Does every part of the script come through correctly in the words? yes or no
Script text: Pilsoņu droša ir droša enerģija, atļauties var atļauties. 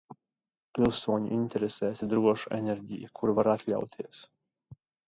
no